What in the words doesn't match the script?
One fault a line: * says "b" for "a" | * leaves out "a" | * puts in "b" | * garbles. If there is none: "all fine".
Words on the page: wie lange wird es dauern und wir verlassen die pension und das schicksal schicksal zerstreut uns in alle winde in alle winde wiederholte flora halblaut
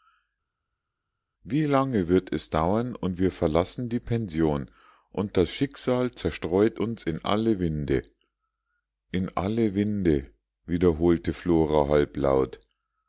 * leaves out "schicksal"